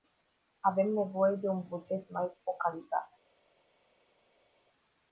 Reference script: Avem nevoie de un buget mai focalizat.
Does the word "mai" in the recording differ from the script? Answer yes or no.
no